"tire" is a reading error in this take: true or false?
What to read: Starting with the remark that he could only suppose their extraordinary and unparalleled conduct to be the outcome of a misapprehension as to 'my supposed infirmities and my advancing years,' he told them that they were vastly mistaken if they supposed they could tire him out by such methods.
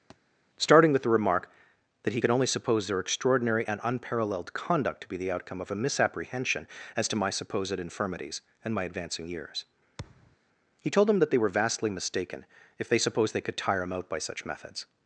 false